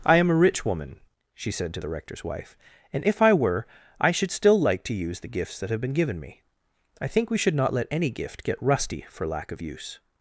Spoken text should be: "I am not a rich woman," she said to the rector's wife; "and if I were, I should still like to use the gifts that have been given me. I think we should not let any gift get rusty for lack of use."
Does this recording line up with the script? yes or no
no